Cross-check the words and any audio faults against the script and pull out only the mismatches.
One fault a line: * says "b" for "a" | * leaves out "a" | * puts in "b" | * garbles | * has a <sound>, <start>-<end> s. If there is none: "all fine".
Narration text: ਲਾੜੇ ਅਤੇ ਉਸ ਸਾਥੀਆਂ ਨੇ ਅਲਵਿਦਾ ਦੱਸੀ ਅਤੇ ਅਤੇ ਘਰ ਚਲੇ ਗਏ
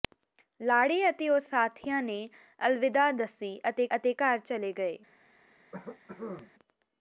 * has a cough, 5.7-6.5 s